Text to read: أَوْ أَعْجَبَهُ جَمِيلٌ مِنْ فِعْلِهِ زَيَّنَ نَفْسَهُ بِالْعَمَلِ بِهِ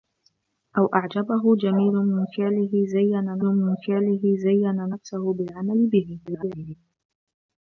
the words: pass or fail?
fail